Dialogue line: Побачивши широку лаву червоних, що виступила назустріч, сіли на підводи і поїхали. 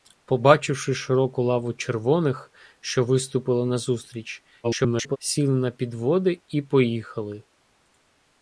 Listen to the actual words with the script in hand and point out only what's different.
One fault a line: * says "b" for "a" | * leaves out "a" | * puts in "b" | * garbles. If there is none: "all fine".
* garbles